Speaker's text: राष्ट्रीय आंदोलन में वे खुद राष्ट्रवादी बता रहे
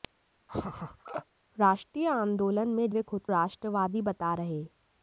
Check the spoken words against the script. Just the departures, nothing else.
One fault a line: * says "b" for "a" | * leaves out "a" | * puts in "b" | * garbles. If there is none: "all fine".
all fine